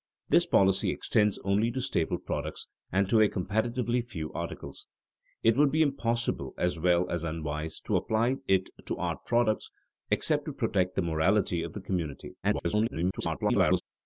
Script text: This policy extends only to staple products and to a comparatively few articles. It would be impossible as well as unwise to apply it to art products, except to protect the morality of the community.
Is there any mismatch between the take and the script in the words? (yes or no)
yes